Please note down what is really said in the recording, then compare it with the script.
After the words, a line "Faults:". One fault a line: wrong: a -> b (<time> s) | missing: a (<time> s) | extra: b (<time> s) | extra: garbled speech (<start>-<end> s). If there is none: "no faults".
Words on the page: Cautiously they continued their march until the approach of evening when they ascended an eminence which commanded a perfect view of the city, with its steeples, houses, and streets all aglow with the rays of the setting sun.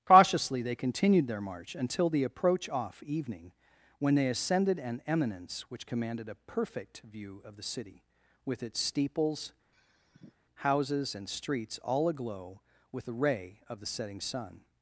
Cautiously they continued their march until the approach off evening when they ascended an eminence which commanded a perfect view of the city, with its steeples, houses, and streets all aglow with the ray of the setting sun.
Faults:
wrong: of -> off (2.7 s)
wrong: rays -> ray (13.1 s)